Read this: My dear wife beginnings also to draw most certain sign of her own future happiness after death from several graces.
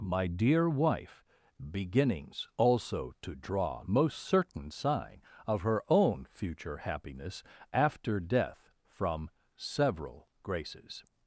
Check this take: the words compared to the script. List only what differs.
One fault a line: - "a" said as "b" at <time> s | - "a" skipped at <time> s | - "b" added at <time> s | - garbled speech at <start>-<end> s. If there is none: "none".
none